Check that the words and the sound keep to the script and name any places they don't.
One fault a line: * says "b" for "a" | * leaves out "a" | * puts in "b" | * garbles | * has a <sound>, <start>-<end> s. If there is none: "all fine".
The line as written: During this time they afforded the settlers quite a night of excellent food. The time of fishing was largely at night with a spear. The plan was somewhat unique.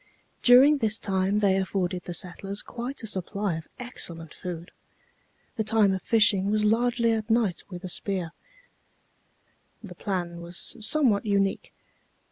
* says "supply" for "night"